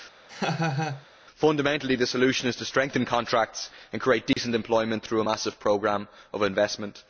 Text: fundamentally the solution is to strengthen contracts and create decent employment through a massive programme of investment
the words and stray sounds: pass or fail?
fail